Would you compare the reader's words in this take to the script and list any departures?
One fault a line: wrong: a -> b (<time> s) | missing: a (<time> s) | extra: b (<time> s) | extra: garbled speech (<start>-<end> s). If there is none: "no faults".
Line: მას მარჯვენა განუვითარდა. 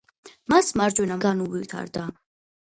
no faults